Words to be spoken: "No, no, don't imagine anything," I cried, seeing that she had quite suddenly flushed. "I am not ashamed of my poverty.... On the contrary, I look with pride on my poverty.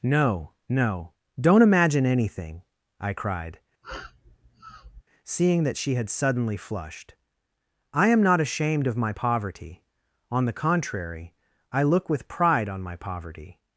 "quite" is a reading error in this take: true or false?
true